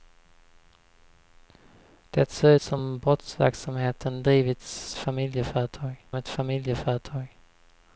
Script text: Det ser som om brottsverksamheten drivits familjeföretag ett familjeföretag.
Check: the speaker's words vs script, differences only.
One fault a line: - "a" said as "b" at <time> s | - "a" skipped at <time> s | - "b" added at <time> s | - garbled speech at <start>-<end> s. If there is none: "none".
none